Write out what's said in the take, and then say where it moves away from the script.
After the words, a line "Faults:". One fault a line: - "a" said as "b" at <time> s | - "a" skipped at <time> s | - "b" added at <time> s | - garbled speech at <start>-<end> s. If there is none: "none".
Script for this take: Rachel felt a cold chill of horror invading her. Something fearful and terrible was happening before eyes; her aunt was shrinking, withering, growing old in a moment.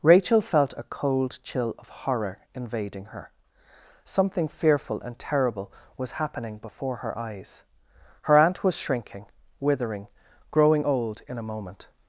Rachel felt a cold chill of horror invading her. Something fearful and terrible was happening before her eyes; her aunt was shrinking, withering, growing old in a moment.
Faults:
- "her" added at 7.0 s